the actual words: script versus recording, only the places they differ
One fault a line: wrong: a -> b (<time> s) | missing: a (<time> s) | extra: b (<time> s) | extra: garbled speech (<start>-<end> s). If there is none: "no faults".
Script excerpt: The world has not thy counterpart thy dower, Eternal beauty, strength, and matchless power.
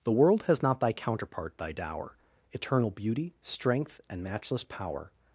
no faults